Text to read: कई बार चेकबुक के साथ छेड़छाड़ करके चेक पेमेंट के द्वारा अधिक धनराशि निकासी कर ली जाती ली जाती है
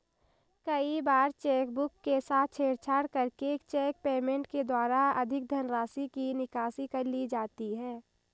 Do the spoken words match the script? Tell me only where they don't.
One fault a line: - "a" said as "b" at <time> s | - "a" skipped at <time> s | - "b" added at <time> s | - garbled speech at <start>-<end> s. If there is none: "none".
- "की" added at 6.1 s
- "ली जाती" skipped at 7.7 s